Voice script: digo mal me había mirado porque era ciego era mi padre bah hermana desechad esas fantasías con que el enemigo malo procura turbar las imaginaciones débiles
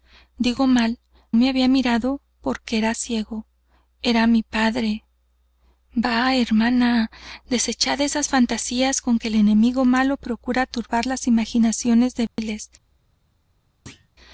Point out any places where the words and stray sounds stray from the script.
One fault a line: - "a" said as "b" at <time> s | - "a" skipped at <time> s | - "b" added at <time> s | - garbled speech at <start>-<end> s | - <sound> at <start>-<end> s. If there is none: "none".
- dropout at 12.3-12.4 s
- thud at 13.9-14.1 s